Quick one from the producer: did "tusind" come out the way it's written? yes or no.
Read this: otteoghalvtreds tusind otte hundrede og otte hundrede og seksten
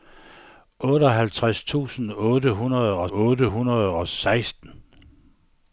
yes